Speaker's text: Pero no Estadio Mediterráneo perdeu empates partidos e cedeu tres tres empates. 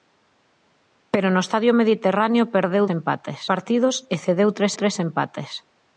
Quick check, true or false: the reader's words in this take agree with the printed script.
true